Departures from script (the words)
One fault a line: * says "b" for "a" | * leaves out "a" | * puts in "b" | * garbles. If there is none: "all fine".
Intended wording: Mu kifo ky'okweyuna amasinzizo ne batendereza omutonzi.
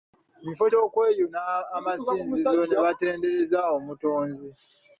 all fine